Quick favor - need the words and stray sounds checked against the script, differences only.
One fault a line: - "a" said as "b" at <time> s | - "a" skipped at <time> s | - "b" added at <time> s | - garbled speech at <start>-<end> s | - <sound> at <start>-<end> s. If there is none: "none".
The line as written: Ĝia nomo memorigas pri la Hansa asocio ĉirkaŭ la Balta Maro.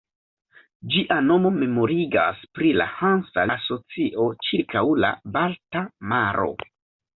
none